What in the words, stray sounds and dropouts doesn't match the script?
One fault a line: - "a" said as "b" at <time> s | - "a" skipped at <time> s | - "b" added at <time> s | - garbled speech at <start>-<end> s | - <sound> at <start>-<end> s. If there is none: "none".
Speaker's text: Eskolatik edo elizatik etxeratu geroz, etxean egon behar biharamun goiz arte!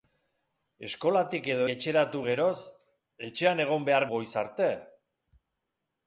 - "elizatik" skipped at 1.6 s
- "biharamun" skipped at 4.1 s